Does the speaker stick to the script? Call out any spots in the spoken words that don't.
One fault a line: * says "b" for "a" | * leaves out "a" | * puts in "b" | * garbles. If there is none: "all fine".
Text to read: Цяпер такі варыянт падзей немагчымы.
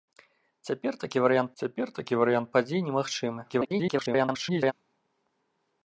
* puts in "цяпер такі варыянт"
* garbles